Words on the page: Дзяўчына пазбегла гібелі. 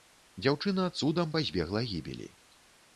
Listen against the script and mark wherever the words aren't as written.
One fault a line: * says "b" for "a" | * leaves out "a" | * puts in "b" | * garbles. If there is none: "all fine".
* puts in "цудам"